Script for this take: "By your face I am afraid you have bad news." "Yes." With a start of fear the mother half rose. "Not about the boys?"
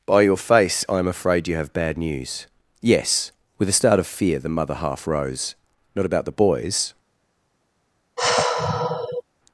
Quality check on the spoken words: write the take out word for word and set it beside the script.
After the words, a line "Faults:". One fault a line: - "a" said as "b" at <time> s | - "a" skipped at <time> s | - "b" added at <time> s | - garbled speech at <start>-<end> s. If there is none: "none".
"By your face I am afraid you have bad news." "Yes." With a start of fear the mother half rose. "Not about the boys?"
Faults:
none